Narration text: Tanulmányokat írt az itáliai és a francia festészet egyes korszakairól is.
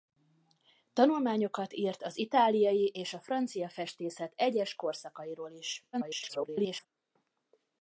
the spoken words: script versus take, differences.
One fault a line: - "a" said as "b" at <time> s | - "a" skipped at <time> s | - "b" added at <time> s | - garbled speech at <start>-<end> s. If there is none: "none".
- garbled speech at 5.9-6.9 s